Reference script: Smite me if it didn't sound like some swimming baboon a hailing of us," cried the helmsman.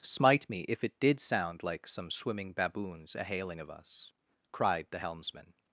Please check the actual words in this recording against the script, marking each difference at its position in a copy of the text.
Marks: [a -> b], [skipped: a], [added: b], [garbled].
Smite me if it [didn't -> did] sound like some swimming [baboon -> baboons] a hailing of us," cried the helmsman.